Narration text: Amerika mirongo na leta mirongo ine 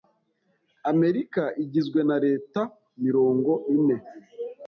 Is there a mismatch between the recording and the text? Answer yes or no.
yes